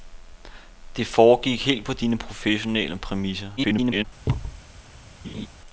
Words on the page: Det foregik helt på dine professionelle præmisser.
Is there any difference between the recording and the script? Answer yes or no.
yes